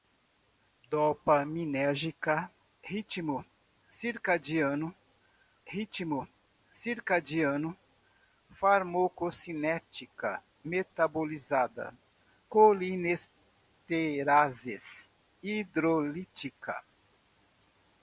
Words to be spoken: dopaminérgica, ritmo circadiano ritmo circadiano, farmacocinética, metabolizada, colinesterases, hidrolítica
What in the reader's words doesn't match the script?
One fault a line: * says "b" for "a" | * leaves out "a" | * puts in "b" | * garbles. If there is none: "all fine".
all fine